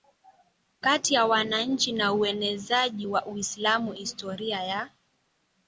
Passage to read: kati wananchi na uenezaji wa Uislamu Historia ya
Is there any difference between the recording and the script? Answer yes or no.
yes